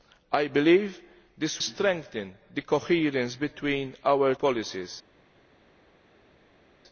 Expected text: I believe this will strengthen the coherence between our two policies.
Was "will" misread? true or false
true